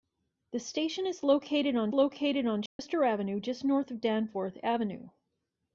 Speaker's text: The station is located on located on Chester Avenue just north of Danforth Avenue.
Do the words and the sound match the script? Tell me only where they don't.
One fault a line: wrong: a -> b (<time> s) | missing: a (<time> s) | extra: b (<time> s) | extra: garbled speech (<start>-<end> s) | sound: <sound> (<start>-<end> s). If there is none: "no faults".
sound: dropout (2.7-2.8 s)